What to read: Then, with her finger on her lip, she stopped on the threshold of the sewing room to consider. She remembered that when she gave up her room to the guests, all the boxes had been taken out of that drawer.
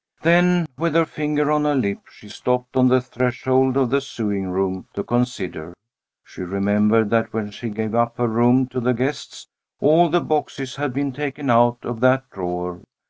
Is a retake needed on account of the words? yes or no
no